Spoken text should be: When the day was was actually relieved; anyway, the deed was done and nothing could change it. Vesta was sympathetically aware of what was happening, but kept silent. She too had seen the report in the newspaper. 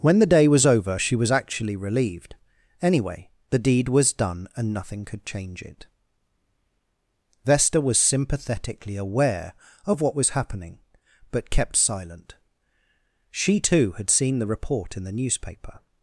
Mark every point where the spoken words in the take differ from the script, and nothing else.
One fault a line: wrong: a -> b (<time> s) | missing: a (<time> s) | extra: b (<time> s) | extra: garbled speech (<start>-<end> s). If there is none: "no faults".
extra: over she (0.7 s)